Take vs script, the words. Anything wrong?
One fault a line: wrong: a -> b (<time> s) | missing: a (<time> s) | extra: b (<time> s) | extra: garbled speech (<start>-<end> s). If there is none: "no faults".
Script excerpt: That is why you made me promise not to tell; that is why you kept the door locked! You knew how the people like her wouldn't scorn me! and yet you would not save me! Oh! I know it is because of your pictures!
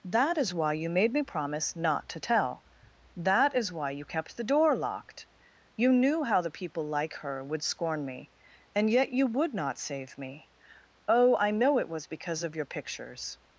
wrong: wouldn't -> would (7.4 s)
wrong: is -> was (11.9 s)